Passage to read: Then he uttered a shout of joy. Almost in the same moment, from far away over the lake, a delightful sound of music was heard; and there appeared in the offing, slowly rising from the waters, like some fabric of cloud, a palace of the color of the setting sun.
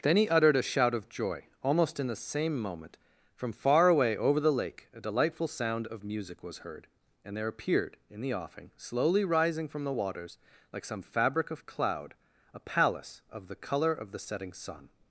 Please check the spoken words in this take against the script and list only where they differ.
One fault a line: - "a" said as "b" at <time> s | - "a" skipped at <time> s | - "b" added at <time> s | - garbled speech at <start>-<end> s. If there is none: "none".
none